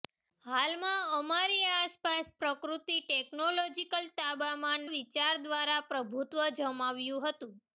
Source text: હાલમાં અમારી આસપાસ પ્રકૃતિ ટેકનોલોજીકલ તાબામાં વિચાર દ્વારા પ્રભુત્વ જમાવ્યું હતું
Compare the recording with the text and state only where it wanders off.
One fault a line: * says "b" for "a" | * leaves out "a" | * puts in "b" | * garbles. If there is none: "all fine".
all fine